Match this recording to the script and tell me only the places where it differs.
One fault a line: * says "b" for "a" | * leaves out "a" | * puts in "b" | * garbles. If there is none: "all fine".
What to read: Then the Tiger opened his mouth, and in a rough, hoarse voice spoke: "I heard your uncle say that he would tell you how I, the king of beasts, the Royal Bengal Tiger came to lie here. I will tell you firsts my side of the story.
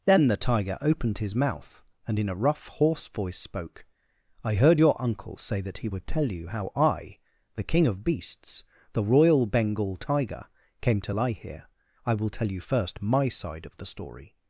* says "first" for "firsts"